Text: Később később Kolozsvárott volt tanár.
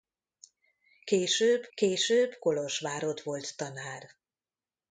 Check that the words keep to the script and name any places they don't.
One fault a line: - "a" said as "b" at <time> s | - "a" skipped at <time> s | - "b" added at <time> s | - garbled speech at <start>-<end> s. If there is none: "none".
none